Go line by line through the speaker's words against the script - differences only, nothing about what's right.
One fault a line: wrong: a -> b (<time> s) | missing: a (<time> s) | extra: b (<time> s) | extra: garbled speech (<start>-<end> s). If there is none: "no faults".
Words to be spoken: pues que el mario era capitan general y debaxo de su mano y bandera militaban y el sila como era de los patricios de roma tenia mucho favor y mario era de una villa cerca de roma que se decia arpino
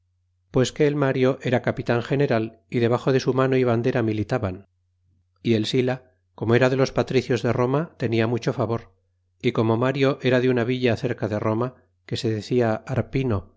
extra: como (9.5 s)